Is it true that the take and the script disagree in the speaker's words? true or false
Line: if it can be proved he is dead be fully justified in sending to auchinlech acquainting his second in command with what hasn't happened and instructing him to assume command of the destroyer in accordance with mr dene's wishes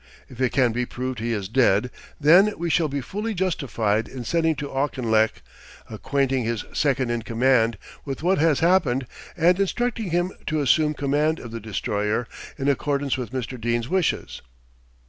true